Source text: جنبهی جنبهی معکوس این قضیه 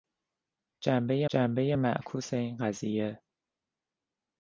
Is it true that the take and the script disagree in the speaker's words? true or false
false